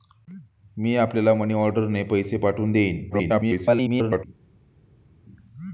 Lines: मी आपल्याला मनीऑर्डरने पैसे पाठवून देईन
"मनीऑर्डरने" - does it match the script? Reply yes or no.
yes